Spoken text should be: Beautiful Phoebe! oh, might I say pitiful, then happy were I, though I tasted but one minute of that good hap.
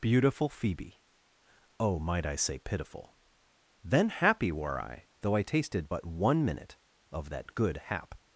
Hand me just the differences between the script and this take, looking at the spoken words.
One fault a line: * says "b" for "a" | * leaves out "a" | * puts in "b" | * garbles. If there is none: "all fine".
all fine